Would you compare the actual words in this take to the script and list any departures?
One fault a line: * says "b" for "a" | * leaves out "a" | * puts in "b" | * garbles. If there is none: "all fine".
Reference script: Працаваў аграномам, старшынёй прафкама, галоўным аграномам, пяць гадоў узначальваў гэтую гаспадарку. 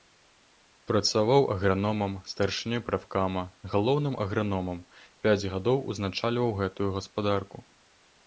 all fine